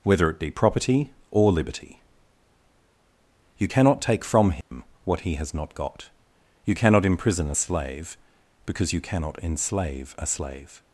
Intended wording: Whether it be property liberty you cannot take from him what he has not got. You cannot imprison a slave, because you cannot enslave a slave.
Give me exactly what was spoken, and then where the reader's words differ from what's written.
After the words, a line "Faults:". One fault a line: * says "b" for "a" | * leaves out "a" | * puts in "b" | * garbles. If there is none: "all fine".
Whether it be property or liberty you cannot take from him what he has not got. You cannot imprison a slave, because you cannot enslave a slave.
Faults:
* puts in "or"